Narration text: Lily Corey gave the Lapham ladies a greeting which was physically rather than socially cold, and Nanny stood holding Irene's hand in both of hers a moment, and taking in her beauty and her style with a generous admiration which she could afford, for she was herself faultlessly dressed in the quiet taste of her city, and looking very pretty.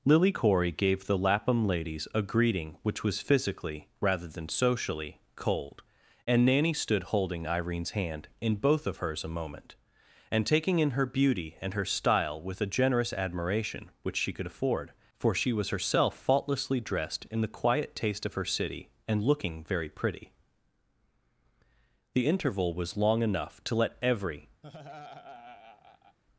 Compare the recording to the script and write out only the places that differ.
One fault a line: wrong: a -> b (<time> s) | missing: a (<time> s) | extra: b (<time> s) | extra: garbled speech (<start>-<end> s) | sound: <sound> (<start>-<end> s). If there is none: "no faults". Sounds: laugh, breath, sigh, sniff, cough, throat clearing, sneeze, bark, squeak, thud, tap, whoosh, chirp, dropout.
extra: The interval was long enough to let every (22.1 s)
sound: laugh (24.6-26.2 s)